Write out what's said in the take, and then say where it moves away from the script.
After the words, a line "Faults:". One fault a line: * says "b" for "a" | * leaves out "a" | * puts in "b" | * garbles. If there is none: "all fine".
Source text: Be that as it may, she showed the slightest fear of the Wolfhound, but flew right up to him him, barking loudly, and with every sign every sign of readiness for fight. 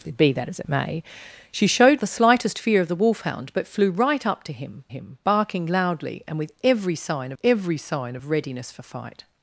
Be that as it may, she showed the slightest fear of the Wolfhound, but flew right up to him him, barking loudly, and with every sign every sign of readiness for fight.
Faults:
all fine